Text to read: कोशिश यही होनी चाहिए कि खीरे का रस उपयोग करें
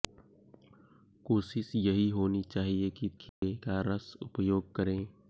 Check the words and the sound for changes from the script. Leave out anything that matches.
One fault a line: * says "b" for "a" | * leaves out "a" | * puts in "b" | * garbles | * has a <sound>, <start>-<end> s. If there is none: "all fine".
* has a dropout, 3.3-3.4 s